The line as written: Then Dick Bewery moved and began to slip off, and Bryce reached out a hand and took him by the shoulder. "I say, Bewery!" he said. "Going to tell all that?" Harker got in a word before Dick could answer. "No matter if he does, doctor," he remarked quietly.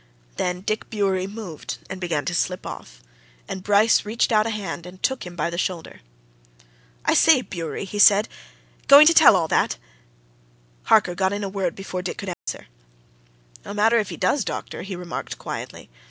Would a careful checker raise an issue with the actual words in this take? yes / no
no